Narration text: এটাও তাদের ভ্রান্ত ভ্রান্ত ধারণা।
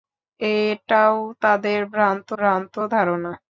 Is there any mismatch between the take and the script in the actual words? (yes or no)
no